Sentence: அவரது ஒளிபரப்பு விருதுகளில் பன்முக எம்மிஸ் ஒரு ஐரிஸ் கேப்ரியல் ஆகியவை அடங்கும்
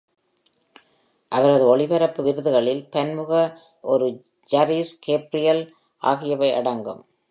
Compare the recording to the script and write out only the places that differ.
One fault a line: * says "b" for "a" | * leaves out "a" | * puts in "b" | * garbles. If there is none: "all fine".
* leaves out "எம்மிஸ்"